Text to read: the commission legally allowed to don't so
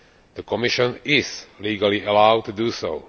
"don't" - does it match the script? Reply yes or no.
no